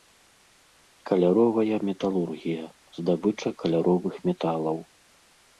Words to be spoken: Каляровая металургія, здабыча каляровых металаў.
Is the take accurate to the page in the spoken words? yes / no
yes